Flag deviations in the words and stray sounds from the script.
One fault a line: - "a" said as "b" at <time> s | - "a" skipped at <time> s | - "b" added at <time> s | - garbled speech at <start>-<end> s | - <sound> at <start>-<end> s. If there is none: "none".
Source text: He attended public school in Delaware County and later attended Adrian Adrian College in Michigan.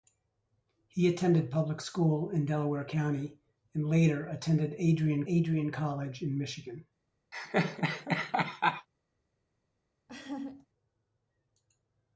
- laugh at 7.3-8.9 s
- laugh at 10.1-10.7 s